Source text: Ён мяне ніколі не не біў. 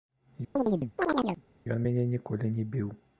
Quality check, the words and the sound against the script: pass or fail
fail